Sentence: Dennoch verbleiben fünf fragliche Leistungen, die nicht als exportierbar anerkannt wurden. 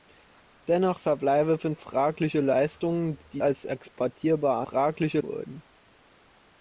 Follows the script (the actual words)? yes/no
no